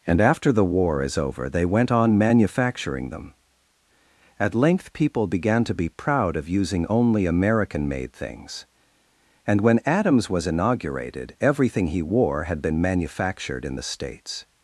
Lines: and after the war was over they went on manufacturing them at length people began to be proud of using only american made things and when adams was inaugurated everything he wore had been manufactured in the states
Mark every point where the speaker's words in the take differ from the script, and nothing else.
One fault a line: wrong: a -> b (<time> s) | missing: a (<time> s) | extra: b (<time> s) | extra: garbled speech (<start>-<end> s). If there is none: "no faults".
wrong: was -> is (1.0 s)